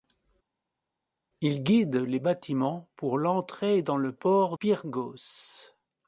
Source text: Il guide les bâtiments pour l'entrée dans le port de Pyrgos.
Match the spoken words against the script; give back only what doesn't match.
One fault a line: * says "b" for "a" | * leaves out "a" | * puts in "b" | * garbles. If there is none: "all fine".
* leaves out "de"